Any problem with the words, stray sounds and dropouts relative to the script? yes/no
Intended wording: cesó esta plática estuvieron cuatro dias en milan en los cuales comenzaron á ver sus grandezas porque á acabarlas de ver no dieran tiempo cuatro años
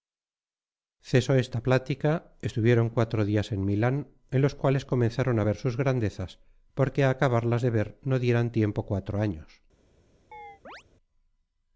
yes